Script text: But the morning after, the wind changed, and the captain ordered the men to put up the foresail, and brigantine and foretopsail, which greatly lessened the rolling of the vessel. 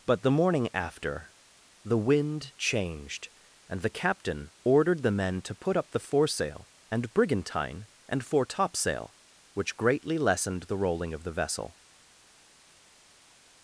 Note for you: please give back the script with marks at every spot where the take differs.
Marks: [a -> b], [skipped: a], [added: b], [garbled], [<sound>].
But the morning after, the wind changed, and the captain ordered the men to put up the foresail, and brigantine and foretopsail, which greatly lessened the rolling of the vessel.